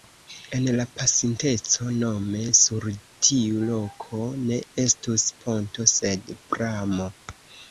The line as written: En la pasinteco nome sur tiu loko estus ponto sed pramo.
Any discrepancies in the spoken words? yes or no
yes